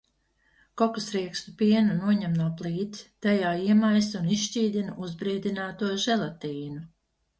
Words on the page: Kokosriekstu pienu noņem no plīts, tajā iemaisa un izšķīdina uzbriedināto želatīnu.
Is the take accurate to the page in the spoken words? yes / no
yes